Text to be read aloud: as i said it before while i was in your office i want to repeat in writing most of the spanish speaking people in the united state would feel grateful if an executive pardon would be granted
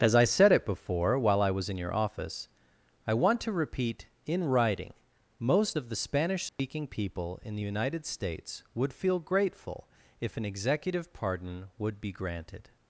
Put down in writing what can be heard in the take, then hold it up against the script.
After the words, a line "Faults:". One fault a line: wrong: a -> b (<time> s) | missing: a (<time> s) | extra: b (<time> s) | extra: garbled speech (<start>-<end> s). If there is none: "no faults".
as i said it before while i was in your office i want to repeat in writing most of the spanish speaking people in the united states would feel grateful if an executive pardon would be granted
Faults:
wrong: state -> states (8.0 s)